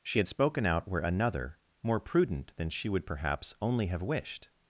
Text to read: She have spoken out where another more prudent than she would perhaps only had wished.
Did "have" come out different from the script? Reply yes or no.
yes